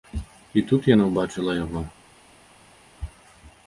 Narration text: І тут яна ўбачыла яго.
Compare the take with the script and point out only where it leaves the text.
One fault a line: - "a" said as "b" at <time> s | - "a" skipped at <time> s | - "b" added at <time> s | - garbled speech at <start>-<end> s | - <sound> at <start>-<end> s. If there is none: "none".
none